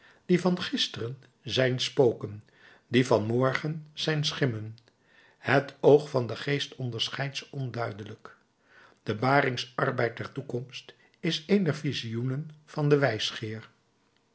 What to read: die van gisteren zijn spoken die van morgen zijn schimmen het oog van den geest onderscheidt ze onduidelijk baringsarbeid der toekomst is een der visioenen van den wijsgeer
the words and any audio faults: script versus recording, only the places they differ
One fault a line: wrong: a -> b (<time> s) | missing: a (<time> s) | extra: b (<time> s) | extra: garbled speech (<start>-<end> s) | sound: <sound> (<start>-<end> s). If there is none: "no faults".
extra: de (9.0 s)